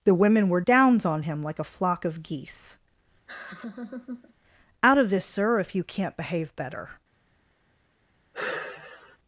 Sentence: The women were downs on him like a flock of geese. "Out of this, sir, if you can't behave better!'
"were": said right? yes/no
yes